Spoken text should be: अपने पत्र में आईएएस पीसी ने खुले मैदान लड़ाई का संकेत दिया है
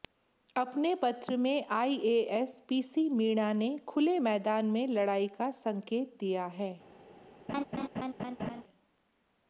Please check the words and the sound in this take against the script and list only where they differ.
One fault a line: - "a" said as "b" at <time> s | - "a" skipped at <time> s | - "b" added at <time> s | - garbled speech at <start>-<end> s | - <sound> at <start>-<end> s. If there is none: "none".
- "मीणा" added at 3.1 s
- "में" added at 4.7 s
- laugh at 7.5-8.6 s